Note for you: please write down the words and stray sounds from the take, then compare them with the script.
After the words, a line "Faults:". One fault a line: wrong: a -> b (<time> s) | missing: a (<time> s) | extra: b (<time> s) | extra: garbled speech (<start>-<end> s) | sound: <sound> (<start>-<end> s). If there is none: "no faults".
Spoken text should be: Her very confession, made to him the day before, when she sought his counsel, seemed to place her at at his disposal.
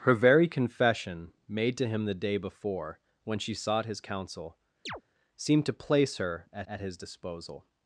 Her very confession, made to him the day before, when she sought his counsel, seemed to place her at at his disposal.
Faults:
sound: chirp (4.9-5.0 s)